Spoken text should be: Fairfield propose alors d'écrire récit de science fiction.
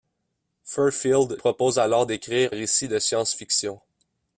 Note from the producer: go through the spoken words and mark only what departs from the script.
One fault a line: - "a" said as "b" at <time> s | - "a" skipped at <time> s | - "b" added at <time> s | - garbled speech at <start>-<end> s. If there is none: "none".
none